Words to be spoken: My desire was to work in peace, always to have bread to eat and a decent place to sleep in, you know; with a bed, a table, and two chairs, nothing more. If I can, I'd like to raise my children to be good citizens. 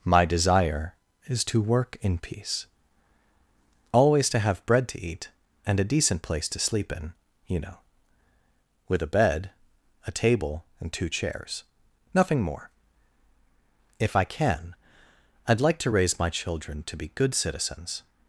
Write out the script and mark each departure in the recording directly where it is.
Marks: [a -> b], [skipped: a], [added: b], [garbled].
My desire [was -> is] to work in peace, always to have bread to eat and a decent place to sleep in, you know; with a bed, a table, and two chairs, nothing more. If I can, I'd like to raise my children to be good citizens.